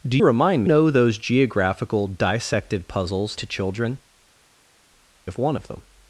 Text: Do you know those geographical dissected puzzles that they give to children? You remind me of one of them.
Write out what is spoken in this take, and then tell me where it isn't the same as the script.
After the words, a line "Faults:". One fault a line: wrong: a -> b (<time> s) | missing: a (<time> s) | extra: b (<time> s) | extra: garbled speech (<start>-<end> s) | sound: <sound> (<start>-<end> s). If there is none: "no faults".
Do remind know those geographical dissected puzzles to children? Of one of them.
Faults:
wrong: you -> remind (0.2 s)
missing: that they give (3.4 s)
missing: You remind me (4.0 s)